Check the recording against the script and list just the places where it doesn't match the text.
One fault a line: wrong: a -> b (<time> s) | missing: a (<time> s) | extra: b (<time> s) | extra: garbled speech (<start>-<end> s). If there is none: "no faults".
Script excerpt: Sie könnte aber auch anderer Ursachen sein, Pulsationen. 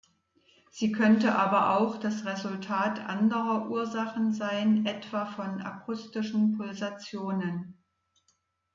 extra: das Resultat (2.0 s)
extra: etwa von akustischen (4.9 s)